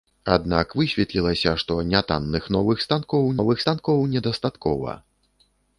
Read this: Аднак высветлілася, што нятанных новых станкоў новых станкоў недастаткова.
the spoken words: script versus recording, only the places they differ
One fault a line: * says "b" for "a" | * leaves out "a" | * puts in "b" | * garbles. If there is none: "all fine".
all fine